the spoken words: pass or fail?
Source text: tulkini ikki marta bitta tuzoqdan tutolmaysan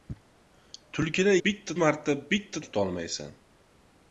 fail